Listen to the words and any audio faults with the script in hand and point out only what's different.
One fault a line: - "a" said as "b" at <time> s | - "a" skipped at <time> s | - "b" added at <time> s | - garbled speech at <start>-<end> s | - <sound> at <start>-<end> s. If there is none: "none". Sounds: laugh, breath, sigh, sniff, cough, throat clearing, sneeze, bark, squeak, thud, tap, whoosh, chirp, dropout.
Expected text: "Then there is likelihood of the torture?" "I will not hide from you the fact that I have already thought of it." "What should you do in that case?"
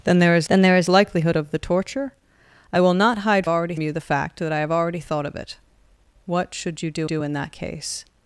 - "then there is" added at 0.5 s
- "from" said as "already" at 3.5 s
- "do" added at 7.0 s